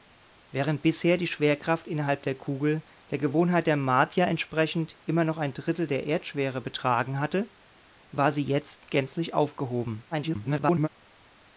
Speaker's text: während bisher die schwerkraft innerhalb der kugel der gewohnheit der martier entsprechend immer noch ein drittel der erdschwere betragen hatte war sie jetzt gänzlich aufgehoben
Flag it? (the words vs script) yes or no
yes